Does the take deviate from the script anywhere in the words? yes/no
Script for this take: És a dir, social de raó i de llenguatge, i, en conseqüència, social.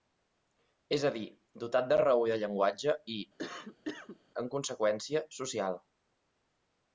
yes